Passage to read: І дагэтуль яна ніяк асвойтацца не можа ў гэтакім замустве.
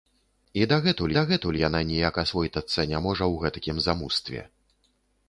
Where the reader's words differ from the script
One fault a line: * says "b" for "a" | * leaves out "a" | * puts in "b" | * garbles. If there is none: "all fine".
* puts in "дагэтуль"